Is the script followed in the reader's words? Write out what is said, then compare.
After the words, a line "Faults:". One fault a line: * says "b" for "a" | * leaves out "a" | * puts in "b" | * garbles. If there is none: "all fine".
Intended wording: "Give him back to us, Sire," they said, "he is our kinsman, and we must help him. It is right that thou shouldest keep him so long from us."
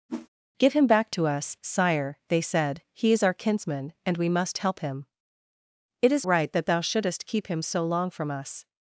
"Give him back to us, Sire," they said, "he is our kinsman, and we must help him. It is right that thou shouldest keep him so long from us."
Faults:
all fine